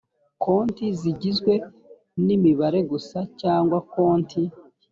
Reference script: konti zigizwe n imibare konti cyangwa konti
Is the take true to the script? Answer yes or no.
no